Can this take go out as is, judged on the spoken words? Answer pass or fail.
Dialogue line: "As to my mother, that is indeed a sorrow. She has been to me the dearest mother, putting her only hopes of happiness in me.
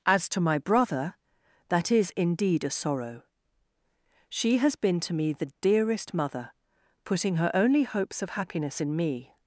fail